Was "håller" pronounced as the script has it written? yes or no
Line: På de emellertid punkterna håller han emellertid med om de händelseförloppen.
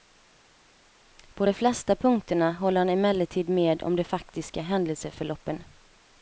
yes